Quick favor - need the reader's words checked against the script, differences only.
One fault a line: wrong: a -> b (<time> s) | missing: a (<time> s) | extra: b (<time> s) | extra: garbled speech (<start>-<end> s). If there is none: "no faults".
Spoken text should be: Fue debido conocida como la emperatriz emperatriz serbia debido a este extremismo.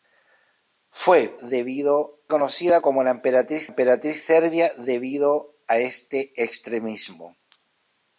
no faults